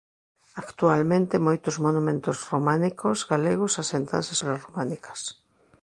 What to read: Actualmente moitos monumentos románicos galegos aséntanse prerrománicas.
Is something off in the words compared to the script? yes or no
no